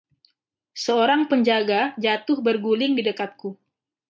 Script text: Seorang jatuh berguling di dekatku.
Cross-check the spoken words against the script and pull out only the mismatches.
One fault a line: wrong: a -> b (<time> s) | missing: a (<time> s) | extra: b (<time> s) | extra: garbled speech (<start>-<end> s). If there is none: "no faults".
extra: penjaga (1.3 s)